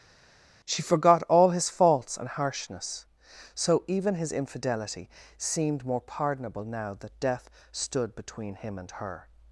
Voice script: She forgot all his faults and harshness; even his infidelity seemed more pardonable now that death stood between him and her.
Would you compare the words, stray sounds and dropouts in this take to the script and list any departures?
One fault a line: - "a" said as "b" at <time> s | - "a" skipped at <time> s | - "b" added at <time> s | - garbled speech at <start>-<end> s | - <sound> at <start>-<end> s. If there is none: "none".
- "so" added at 3.5 s